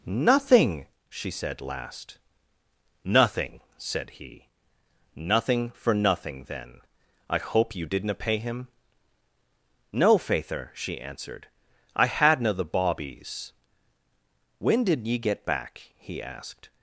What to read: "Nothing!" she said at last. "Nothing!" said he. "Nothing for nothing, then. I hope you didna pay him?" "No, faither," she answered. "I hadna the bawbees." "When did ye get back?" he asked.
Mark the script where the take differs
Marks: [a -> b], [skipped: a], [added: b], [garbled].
"Nothing!" she said [skipped: at] last. "Nothing!" said he. "Nothing for nothing, then. I hope you didna pay him?" "No, faither," she answered. "I hadna the bawbees." "When did ye get back?" he asked.